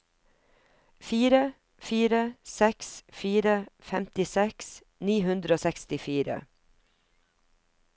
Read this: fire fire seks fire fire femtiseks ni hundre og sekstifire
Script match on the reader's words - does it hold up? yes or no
no